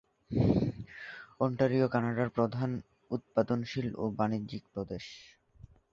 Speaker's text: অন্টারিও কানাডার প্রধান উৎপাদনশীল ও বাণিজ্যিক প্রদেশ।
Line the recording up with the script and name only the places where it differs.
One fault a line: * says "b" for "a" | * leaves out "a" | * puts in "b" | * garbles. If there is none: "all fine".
all fine